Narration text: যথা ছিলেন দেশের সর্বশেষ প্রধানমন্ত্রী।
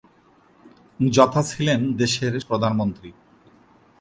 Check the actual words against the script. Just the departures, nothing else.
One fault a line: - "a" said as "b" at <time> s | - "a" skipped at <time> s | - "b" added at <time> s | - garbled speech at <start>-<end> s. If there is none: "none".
- "সর্বশেষ" skipped at 2.3 s